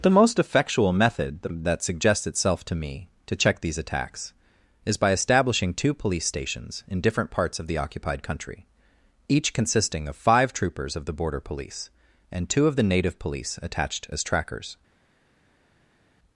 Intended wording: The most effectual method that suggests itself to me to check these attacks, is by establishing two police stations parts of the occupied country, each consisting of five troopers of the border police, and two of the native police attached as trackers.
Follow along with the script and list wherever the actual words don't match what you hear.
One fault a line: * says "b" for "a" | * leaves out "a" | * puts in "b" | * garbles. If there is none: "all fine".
* puts in "in different"